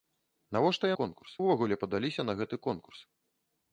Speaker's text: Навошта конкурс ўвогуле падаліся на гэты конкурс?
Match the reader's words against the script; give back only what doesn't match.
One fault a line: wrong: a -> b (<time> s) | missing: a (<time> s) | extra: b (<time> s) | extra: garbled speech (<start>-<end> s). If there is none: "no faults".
no faults